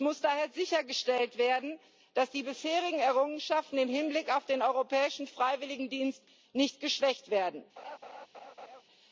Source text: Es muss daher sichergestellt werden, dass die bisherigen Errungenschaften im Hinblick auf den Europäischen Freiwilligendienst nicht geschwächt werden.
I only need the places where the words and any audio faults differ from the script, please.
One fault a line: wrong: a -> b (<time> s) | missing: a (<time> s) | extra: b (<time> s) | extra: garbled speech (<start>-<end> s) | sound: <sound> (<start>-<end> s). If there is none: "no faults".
sound: laugh (7.8-8.8 s)